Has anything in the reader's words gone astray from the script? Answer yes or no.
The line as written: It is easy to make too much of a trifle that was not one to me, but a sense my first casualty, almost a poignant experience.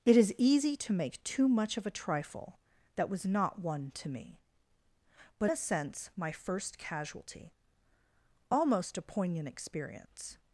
no